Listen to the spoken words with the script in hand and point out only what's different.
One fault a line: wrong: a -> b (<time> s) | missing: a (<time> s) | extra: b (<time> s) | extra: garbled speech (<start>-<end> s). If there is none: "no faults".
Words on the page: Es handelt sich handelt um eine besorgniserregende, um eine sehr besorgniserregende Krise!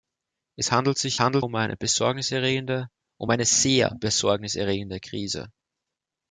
no faults